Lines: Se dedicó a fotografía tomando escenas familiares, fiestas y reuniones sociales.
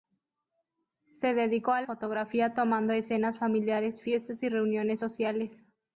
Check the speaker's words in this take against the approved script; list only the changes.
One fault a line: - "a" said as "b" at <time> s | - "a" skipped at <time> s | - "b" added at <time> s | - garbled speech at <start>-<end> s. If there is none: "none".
none